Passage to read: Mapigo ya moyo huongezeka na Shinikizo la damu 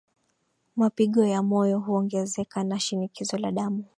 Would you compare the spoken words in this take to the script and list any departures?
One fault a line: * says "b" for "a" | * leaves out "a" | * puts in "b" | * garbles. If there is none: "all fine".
all fine